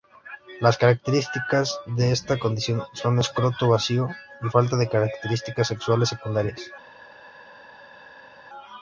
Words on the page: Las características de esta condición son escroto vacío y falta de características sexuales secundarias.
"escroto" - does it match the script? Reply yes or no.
yes